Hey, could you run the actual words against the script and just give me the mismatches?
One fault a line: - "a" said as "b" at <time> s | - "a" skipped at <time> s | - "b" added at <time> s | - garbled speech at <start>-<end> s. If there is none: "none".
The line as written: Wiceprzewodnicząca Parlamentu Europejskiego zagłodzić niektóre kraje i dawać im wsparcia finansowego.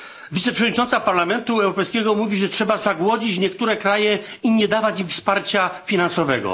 - "mówi że trzeba" added at 2.1 s
- "nie" added at 4.5 s